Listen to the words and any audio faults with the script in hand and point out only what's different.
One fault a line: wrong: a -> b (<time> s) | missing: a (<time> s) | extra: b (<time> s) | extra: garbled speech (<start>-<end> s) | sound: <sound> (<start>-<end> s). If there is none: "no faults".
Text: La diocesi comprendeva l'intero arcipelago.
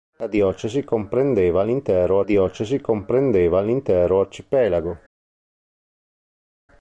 extra: diocesi comprendeva l'intero (2.2 s)